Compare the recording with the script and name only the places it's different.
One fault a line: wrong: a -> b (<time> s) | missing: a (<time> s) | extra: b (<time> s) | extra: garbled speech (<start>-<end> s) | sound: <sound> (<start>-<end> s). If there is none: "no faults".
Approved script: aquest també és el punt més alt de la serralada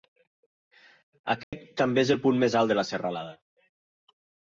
sound: dropout (1.4-1.5 s)